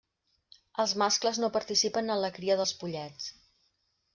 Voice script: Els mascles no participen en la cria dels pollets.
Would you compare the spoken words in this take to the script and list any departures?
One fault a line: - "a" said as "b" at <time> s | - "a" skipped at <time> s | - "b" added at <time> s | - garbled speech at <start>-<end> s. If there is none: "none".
none